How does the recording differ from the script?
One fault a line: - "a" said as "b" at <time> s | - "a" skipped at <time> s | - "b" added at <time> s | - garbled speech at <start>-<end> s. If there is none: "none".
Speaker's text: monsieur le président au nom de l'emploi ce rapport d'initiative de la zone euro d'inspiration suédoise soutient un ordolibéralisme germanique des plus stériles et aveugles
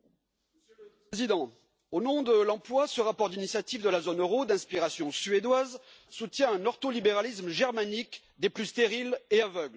none